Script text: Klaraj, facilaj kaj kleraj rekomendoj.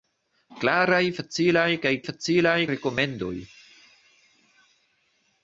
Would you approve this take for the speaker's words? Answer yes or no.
no